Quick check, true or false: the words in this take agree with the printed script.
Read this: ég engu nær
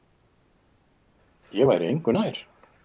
false